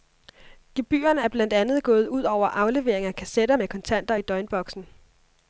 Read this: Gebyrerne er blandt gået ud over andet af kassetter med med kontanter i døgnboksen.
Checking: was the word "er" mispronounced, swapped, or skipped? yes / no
no